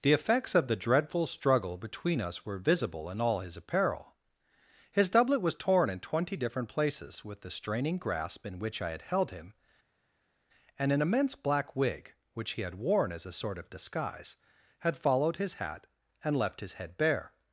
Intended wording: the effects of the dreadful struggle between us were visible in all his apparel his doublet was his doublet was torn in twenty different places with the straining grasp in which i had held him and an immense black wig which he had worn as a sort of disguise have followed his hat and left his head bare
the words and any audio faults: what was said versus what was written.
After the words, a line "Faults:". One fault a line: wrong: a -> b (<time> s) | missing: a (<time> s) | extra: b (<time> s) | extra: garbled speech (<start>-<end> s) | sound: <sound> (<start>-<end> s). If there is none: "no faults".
the effects of the dreadful struggle between us were visible in all his apparel his doublet was torn in twenty different places with the straining grasp in which i had held him and an immense black wig which he had worn as a sort of disguise had followed his hat and left his head bare
Faults:
missing: his doublet was (5.5 s)
wrong: have -> had (14.8 s)